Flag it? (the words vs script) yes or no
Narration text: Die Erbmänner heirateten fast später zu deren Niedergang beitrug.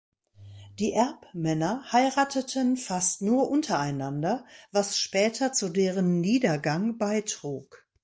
yes